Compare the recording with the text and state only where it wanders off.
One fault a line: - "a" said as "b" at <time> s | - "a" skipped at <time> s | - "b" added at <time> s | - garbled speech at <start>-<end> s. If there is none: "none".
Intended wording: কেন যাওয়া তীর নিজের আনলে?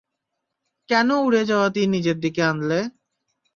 - "উড়ে" added at 1.2 s
- "দিকে" added at 2.2 s